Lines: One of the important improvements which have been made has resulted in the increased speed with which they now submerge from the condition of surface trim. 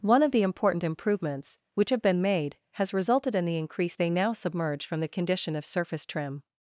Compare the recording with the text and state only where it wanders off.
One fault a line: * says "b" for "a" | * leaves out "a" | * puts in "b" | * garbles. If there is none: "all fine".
* leaves out "speed with which"